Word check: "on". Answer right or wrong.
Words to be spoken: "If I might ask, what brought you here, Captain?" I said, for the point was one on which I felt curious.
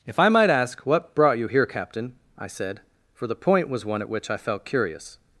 wrong